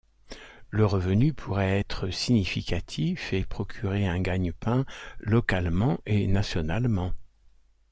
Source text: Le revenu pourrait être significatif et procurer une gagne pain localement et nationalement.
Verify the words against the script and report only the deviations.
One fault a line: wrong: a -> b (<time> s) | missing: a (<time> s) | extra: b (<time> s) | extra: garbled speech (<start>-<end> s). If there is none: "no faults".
wrong: une -> un (4.1 s)